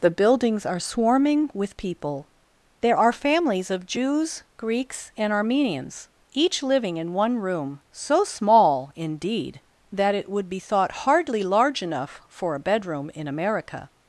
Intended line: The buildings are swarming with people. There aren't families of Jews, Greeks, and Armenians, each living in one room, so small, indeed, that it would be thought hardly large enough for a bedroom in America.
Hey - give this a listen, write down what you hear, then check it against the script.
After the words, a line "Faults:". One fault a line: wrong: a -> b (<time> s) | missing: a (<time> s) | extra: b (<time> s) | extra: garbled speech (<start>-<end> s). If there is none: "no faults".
The buildings are swarming with people. There are families of Jews, Greeks, and Armenians, each living in one room, so small, indeed, that it would be thought hardly large enough for a bedroom in America.
Faults:
wrong: aren't -> are (3.0 s)